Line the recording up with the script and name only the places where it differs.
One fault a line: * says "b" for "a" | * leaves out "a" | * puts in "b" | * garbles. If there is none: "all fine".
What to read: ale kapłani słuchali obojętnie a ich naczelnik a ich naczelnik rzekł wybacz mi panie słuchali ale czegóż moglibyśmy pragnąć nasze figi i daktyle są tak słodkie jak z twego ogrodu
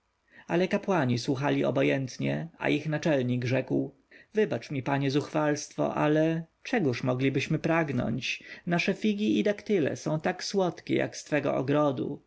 * leaves out "a ich naczelnik"
* says "zuchwalstwo" for "słuchali"